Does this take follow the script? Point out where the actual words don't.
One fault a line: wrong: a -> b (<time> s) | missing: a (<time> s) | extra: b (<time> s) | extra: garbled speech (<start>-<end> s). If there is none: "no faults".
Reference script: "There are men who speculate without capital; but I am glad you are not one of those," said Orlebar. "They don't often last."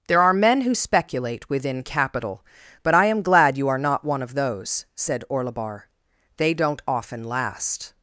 wrong: without -> within (1.5 s)